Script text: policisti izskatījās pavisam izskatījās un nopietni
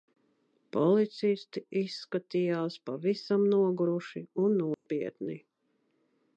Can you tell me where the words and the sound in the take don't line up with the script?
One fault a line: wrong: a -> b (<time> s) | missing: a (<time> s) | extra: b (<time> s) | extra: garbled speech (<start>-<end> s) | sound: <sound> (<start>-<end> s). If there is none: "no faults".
wrong: izskatījās -> noguruši (3.5 s)
sound: dropout (4.7-4.9 s)